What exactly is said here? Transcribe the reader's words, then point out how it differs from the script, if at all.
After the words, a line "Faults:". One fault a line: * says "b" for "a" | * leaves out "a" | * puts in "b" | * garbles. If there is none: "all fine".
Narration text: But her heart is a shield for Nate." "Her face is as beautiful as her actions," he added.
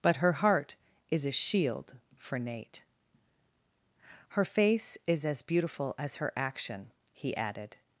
But her heart is a shield for Nate." "Her face is as beautiful as her action," he added.
Faults:
* says "action" for "actions"